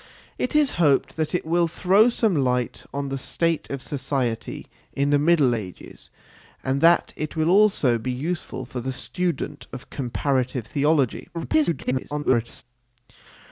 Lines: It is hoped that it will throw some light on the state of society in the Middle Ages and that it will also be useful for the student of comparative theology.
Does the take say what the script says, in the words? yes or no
no